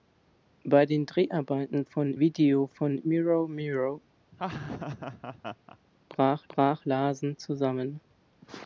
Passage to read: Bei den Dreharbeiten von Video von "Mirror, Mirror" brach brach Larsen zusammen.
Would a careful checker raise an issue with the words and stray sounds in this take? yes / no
yes